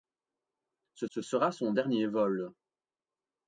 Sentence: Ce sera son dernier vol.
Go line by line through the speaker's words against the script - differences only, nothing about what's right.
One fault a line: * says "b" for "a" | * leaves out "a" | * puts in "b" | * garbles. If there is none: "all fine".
* puts in "ce"